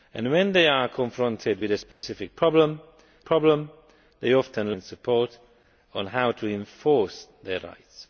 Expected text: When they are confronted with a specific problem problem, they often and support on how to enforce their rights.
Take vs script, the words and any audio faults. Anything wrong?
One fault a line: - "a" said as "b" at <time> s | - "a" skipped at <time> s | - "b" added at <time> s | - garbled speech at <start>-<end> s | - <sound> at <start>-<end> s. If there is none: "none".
- dropout at 1.9-2.0 s